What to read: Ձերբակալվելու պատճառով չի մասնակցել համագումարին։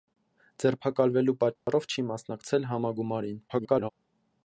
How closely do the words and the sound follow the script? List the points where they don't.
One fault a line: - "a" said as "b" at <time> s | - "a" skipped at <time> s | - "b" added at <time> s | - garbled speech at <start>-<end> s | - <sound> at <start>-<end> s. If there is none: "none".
- dropout at 1.6-1.7 s
- garbled speech at 3.5-3.9 s